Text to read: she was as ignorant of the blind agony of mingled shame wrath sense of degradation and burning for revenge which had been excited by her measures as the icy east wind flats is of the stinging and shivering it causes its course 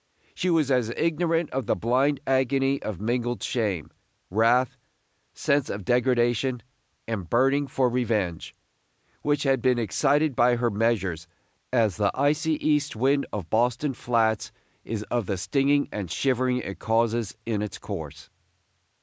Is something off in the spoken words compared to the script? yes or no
yes